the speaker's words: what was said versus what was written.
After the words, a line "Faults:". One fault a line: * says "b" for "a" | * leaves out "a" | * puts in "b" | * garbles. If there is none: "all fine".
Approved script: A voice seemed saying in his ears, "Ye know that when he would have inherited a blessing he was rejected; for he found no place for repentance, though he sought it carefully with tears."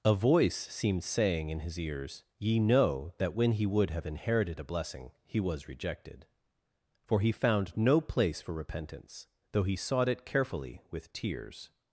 A voice seemed saying in his ears, "Ye know that when he would have inherited a blessing he was rejected; for he found no place for repentance, though he sought it carefully with tears."
Faults:
all fine